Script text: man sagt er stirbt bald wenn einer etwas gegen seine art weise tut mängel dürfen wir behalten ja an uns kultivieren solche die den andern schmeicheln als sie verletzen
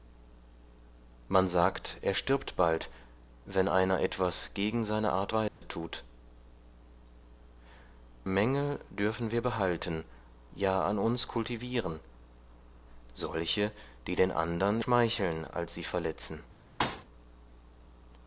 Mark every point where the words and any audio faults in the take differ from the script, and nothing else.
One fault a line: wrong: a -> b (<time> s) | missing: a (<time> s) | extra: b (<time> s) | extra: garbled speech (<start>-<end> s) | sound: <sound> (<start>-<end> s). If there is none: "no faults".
sound: dropout (5.5-5.6 s)
sound: thud (16.8-17.0 s)